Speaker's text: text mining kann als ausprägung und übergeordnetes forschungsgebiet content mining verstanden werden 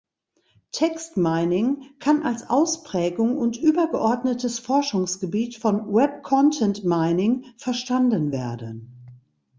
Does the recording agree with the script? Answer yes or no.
no